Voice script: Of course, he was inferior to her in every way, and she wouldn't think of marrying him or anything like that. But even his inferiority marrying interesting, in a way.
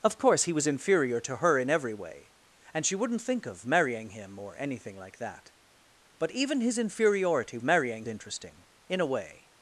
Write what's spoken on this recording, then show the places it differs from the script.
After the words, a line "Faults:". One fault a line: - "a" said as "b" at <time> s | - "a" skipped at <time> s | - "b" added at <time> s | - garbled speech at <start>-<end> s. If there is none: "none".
Of course, he was inferior to her in every way, and she wouldn't think of marrying him or anything like that. But even his inferiority marrying interesting, in a way.
Faults:
none